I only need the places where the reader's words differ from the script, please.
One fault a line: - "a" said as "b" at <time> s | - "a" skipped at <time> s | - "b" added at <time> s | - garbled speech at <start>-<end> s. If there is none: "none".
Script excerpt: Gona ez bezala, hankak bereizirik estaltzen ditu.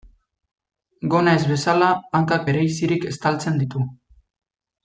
none